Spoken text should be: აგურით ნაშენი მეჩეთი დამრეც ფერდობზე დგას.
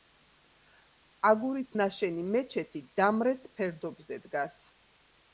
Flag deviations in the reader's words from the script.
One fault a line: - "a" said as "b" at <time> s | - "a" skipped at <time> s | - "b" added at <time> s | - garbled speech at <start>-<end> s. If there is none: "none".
none